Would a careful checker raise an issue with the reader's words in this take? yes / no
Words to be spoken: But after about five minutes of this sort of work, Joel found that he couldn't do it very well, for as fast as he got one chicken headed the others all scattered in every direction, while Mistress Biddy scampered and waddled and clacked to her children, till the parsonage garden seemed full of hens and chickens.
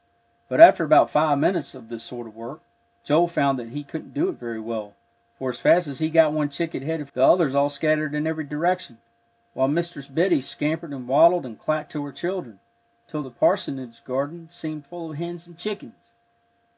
no